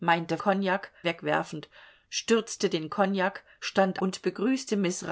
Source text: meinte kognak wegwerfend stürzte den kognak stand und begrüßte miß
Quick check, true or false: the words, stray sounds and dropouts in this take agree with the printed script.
true